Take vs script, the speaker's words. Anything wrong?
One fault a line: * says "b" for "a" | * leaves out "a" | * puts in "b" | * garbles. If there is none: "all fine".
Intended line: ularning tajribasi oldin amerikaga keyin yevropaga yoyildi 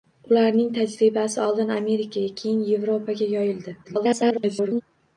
* garbles